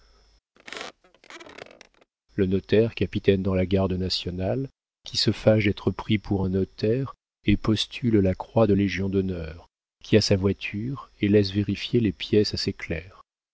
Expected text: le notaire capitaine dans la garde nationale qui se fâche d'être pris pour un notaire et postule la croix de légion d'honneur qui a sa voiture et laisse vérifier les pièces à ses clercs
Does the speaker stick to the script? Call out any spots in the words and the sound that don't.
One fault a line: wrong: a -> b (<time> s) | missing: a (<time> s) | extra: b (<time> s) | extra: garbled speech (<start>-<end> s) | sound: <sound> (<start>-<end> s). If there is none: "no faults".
sound: squeak (0.6-2.1 s)